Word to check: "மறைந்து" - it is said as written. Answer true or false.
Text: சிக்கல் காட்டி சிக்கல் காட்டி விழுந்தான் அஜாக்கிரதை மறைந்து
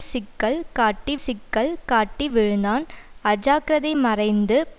true